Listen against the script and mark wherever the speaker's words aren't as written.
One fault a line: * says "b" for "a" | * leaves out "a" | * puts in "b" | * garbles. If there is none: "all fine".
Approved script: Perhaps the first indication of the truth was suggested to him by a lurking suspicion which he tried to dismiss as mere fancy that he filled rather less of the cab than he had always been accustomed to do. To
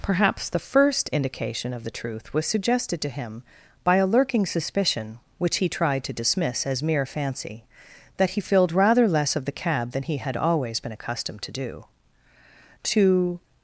all fine